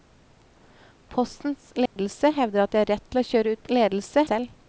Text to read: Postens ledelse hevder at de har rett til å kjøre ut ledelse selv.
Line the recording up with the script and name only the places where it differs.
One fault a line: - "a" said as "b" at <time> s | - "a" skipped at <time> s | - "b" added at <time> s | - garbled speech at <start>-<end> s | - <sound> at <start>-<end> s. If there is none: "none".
- dropout at 1.9-2.0 s